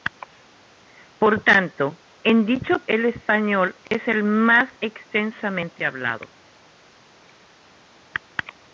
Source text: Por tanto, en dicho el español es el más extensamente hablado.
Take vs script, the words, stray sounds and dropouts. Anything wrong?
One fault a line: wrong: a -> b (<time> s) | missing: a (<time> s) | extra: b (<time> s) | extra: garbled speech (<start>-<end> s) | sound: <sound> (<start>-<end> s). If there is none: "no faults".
sound: dropout (3.9-3.9 s)